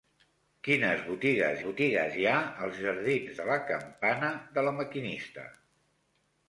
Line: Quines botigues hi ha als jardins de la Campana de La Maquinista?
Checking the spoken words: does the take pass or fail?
fail